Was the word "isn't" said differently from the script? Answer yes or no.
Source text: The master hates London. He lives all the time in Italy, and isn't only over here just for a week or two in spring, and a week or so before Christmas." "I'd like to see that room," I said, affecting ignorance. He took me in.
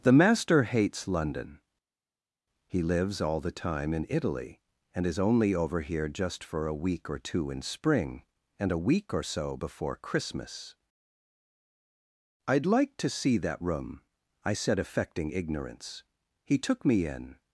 yes